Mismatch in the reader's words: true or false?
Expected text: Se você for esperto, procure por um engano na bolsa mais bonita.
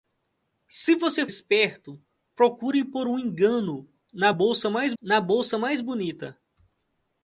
true